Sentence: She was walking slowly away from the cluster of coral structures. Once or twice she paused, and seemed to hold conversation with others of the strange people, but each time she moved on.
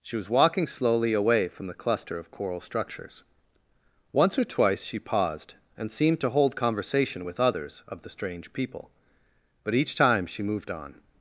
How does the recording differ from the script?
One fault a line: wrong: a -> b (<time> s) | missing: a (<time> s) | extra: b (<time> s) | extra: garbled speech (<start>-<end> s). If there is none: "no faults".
no faults